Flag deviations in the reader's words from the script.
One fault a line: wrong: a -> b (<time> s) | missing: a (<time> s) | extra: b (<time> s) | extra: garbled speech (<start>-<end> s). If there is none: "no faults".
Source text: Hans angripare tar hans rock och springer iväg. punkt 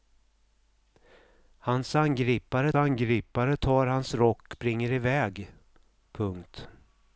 extra: angripare (2.7 s)
missing: och (4.5 s)